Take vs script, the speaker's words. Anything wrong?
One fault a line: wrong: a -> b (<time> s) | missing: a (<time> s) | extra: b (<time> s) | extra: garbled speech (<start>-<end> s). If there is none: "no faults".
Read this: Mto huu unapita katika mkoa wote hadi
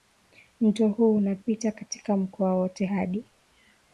no faults